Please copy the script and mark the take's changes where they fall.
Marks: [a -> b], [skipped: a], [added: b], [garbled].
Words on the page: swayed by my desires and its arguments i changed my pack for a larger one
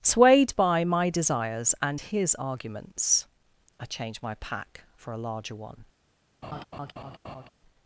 swayed by my desires and [its -> his] arguments i changed my pack for a larger one